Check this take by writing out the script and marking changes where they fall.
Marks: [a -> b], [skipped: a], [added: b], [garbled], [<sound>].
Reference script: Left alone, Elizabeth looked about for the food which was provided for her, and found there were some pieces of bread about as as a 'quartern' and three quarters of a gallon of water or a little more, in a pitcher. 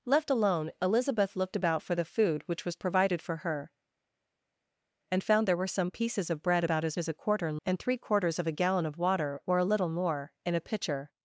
Left alone, Elizabeth looked about for the food which was provided for her, and found there were some pieces of bread about as as a 'quartern' and three quarters of a gallon of water or a little more, in a pitcher.